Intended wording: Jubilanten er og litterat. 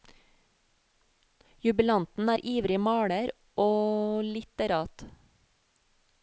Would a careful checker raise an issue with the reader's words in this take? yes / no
yes